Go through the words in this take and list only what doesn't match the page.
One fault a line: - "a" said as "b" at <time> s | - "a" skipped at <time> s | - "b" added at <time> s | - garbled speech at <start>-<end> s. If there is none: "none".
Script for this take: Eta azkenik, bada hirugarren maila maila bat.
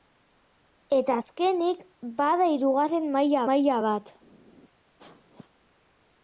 none